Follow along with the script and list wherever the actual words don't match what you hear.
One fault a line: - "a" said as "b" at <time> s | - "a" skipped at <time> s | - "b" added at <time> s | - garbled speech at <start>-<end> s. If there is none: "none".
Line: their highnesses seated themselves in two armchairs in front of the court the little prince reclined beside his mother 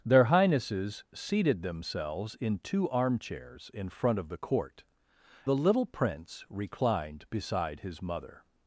none